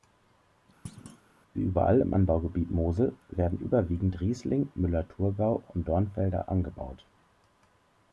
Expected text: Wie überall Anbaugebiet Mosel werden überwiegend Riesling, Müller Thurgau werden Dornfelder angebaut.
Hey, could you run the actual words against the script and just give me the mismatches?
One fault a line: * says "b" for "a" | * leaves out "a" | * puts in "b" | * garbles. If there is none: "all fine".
* puts in "im"
* says "und" for "werden"